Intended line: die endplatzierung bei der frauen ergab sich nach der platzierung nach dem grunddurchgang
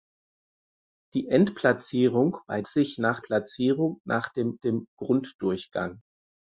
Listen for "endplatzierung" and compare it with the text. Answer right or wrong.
right